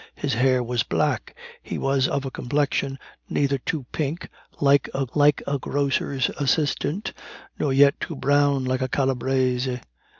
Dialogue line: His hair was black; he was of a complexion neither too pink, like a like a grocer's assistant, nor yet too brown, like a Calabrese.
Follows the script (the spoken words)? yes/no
yes